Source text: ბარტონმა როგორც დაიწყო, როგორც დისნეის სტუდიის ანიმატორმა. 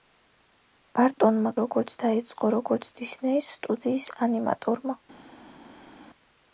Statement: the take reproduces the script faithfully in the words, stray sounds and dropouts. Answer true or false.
true